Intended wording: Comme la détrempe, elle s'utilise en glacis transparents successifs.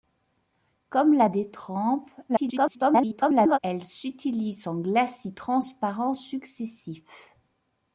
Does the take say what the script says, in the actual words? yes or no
no